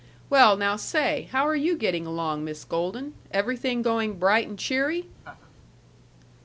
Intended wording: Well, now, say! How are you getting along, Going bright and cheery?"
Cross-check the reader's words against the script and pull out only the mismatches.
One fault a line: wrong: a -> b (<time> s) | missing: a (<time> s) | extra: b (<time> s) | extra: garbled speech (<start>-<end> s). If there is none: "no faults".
extra: Miss Golden Everything (2.4 s)